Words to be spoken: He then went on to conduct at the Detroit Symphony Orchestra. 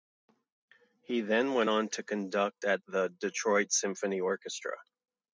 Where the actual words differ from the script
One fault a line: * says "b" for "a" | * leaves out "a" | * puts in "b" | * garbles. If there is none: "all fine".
all fine